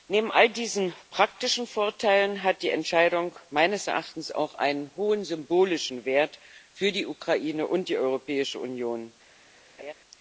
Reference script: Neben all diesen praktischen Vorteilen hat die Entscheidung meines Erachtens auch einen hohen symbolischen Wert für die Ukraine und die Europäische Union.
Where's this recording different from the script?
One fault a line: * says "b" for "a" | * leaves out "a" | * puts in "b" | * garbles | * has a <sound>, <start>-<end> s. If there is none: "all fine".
* has a laugh, 9.8-9.9 s